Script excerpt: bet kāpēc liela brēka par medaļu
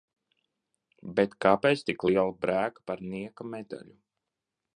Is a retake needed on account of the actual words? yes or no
yes